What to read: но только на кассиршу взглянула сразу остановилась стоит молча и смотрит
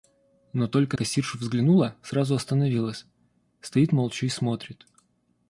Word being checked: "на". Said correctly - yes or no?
no